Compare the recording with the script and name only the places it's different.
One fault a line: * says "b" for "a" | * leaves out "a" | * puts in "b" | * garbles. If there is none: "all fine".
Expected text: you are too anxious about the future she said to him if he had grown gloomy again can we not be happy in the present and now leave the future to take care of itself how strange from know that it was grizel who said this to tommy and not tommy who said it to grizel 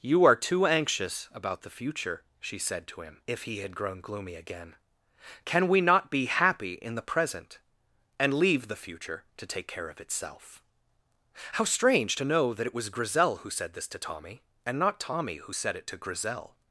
* leaves out "now"
* says "to" for "from"